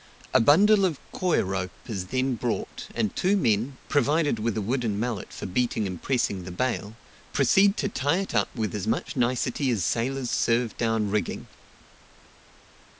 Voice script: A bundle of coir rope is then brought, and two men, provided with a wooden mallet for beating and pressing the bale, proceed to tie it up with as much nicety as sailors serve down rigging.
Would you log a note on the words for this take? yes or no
no